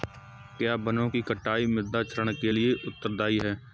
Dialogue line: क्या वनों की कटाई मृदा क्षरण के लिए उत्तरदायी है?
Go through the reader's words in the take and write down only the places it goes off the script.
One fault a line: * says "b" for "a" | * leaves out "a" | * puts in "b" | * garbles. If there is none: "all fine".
all fine